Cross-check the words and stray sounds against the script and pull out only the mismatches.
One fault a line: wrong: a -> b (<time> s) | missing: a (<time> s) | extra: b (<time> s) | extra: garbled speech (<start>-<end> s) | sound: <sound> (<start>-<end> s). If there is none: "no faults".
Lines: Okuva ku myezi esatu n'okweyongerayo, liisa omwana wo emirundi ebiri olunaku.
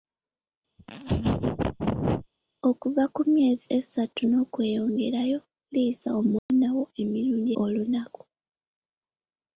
sound: laugh (0.8-2.3 s)
sound: dropout (6.4-6.5 s)
missing: ebiri (7.5 s)